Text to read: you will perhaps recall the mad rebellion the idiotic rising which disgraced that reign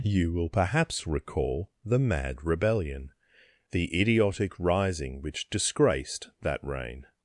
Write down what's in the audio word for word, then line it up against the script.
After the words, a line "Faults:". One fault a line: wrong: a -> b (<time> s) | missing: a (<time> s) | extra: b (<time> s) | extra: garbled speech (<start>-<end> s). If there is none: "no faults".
you will perhaps recall the mad rebellion the idiotic rising which disgraced that reign
Faults:
no faults